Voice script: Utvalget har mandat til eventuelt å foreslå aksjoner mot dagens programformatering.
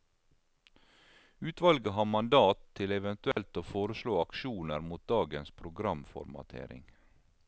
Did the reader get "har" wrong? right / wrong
right